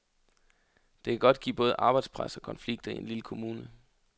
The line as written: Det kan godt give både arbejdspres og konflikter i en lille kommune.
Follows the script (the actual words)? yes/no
yes